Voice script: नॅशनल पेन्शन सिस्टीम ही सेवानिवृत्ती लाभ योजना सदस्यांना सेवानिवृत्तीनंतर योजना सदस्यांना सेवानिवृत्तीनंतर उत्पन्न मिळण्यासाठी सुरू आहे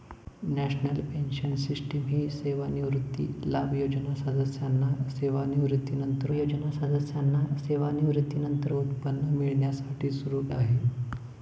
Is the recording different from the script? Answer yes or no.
no